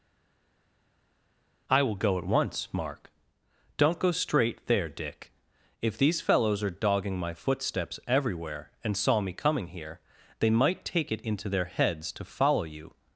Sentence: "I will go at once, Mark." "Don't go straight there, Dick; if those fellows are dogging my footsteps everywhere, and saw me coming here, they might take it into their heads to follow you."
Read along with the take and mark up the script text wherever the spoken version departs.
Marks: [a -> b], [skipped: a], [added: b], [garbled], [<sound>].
"I will go at once, Mark." "Don't go straight there, Dick; if [those -> these] fellows are dogging my footsteps everywhere, and saw me coming here, they might take it into their heads to follow you."